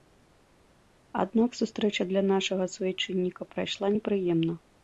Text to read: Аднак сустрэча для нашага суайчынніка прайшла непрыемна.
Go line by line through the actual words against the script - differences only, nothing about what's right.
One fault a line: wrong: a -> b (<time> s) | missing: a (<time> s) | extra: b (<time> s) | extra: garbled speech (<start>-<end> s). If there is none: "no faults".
no faults